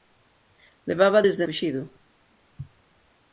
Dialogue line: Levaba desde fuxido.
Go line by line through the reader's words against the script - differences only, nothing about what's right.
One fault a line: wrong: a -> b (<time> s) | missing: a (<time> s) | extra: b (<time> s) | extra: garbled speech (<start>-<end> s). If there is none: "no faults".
no faults